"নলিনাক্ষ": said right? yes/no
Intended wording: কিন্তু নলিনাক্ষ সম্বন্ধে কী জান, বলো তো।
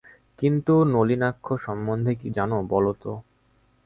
yes